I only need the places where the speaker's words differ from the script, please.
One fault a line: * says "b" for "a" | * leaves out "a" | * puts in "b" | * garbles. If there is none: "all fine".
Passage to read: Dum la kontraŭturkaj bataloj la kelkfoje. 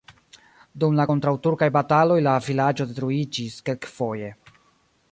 * puts in "vilaĝo detruiĝis"